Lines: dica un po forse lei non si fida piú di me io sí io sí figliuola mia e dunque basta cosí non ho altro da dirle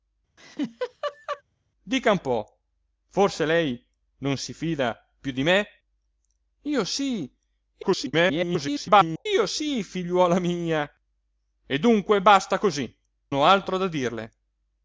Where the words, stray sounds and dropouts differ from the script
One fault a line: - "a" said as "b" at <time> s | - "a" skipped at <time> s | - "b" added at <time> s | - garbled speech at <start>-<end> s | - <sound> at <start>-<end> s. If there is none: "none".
- laugh at 0.4-1.4 s
- garbled speech at 7.8-9.3 s
- "non" skipped at 12.9 s